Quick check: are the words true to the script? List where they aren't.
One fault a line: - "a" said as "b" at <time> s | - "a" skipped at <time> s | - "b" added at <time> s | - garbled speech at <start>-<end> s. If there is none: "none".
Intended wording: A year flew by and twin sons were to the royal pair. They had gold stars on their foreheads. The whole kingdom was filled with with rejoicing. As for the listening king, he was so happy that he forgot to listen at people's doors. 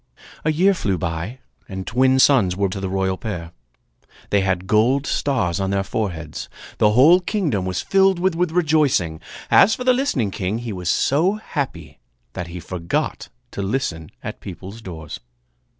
none